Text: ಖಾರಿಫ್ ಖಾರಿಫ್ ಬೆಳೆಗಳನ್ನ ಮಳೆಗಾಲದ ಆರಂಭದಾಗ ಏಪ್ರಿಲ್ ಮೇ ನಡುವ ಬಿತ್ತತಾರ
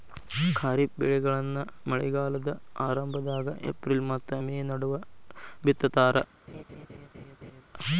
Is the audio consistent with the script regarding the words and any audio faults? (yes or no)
no